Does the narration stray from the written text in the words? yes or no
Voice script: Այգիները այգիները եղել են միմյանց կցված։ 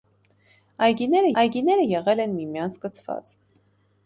no